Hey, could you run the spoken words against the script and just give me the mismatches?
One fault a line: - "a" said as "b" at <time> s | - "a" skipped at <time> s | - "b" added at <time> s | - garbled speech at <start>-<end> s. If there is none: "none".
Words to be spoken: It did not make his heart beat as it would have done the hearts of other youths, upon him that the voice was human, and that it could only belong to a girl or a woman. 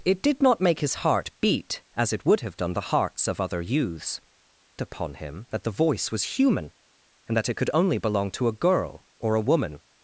none